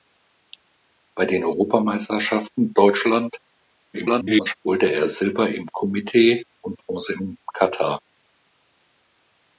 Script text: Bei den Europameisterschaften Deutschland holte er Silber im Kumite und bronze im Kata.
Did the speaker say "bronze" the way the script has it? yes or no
yes